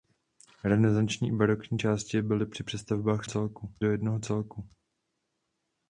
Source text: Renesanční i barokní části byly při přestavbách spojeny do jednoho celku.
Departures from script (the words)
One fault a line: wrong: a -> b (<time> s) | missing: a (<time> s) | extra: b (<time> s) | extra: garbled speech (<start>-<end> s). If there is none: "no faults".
wrong: spojeny -> celku (3.2 s)